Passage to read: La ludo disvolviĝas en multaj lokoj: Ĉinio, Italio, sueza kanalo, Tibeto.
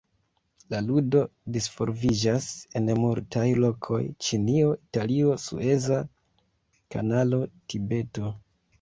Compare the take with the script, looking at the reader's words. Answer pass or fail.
pass